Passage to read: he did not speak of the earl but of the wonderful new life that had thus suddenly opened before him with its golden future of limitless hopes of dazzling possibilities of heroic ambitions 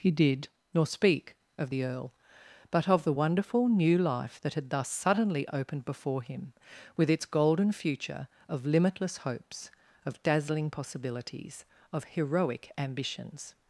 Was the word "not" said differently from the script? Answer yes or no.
yes